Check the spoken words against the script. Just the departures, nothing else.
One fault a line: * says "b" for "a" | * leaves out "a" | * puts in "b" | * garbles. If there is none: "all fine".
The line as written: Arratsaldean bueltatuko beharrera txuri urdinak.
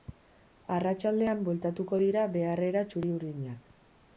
* puts in "dira"